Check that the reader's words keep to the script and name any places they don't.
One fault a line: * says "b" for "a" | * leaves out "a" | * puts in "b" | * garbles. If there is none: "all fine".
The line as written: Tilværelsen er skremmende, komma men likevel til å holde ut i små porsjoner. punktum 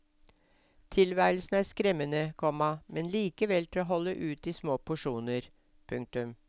all fine